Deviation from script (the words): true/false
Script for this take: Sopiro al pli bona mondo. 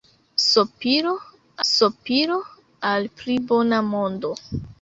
true